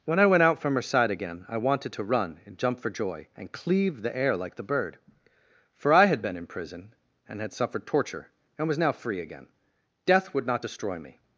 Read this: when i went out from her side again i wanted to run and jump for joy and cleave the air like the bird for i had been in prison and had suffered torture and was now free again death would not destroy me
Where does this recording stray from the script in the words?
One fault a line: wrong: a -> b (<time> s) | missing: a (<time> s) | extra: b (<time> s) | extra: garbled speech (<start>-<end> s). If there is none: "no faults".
no faults